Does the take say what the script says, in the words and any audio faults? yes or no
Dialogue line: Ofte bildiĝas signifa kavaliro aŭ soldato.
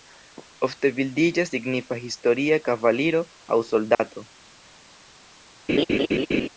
no